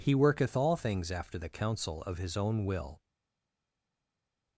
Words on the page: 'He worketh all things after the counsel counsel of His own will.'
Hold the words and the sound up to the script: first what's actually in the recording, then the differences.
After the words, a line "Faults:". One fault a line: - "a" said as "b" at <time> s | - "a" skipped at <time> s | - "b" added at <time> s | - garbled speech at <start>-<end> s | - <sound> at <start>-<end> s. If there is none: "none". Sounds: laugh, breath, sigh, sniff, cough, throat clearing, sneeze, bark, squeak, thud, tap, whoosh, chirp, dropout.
'He worketh all things after the counsel of His own will.'
Faults:
- "counsel" skipped at 2.0 s